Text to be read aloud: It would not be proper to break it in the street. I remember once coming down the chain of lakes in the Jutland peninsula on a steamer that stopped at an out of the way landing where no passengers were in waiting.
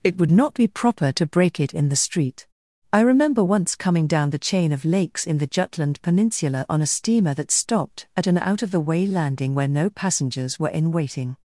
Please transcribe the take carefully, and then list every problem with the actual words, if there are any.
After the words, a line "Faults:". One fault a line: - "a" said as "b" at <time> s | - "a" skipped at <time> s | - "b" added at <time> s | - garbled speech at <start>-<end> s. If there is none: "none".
It would not be proper to break it in the street. I remember once coming down the chain of lakes in the Jutland peninsula on a steamer that stopped at an out of the way landing where no passengers were in waiting.
Faults:
none